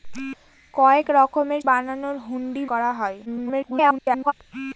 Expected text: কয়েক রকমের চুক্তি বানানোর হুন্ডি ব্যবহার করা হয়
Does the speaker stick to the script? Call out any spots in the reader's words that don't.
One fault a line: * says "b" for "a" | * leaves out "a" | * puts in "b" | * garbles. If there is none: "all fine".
* leaves out "চুক্তি"
* leaves out "ব্যবহার"
* garbles